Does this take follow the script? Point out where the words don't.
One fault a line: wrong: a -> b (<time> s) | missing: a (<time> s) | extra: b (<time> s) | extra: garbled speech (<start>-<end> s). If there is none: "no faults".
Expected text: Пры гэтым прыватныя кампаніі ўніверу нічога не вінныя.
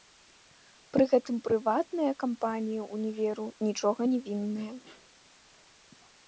no faults